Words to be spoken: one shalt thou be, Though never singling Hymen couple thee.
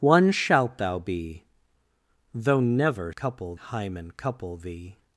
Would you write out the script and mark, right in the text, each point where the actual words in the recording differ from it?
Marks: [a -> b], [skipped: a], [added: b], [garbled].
one shalt thou be, Though never [singling -> couple] Hymen couple thee.